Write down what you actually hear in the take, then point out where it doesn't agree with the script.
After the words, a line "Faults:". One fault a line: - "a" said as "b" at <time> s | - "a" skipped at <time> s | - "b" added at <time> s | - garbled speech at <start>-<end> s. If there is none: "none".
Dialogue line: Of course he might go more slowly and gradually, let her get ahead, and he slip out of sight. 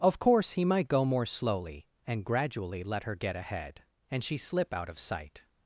Of course he might go more slowly and gradually, let her get ahead, and she slip out of sight.
Faults:
- "he" said as "she" at 4.2 s